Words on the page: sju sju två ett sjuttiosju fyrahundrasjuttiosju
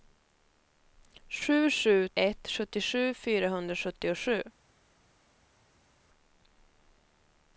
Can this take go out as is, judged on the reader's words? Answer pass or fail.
fail